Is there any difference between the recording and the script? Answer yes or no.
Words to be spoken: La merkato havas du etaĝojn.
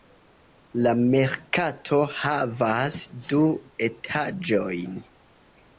no